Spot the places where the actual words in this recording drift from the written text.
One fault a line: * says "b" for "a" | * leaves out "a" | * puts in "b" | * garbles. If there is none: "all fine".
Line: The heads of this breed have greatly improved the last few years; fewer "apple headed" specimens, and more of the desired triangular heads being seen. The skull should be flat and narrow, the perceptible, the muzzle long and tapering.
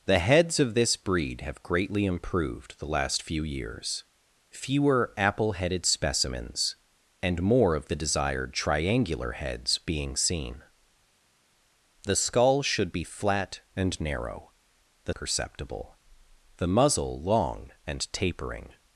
all fine